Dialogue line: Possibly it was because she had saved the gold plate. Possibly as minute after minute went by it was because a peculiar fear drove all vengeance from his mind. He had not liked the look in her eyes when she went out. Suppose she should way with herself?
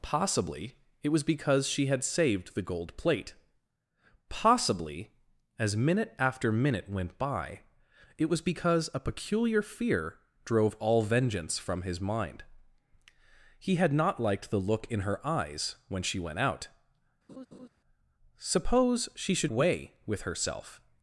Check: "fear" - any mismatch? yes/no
no